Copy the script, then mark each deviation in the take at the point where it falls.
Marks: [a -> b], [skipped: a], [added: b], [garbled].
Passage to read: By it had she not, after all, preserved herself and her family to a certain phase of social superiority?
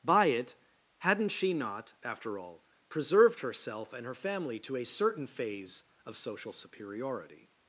By it [had -> hadn't] she not, after all, preserved herself and her family to a certain phase of social superiority?